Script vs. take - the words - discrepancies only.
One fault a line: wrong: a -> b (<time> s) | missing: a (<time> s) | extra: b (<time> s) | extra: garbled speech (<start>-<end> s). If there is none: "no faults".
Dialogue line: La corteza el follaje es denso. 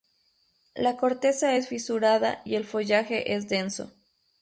extra: es fisurada y (1.5 s)